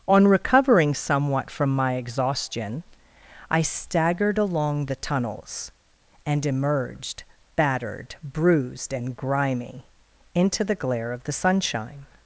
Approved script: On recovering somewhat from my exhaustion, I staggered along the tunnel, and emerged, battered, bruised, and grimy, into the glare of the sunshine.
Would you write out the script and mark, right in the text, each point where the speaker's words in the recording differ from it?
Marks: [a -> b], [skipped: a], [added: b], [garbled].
On recovering somewhat from my exhaustion, I staggered along the [tunnel, -> tunnels] and emerged, battered, bruised, and grimy, into the glare of the sunshine.